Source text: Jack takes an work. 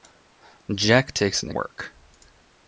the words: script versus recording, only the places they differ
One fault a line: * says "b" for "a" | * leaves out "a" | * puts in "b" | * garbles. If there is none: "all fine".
all fine